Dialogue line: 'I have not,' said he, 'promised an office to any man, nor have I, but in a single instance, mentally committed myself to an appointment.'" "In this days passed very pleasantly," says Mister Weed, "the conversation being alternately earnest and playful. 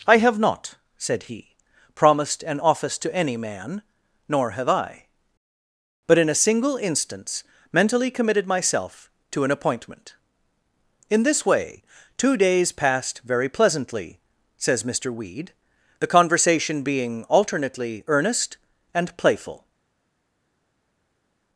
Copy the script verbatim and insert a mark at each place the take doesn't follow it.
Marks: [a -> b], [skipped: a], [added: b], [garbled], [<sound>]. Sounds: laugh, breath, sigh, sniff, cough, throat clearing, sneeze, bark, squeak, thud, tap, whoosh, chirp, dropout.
'I have not,' said he, 'promised an office to any man, nor have I, but in a single instance, mentally committed myself to an appointment.'" "In this [added: way two] days passed very pleasantly," says Mister Weed, "the conversation being alternately earnest and playful.